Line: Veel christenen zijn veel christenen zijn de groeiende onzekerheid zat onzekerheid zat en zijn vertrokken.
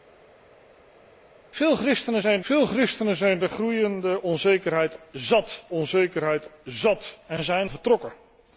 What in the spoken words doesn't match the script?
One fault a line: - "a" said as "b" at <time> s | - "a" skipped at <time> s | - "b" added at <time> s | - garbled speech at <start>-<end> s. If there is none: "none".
none